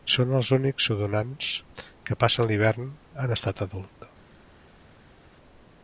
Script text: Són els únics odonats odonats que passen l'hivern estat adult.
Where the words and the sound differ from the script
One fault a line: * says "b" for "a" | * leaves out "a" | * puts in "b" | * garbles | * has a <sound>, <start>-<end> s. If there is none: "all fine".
* leaves out "odonats"
* puts in "en"